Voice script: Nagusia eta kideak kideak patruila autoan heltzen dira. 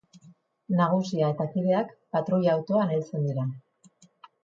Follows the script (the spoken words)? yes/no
no